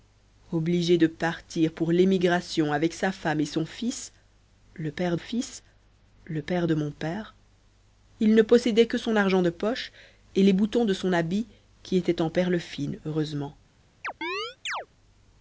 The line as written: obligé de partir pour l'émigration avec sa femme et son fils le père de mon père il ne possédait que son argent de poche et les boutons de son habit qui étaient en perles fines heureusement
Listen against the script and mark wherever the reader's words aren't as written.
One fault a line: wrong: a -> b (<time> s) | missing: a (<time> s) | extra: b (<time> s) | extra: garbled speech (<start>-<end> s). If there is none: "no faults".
extra: fils le père (5.2 s)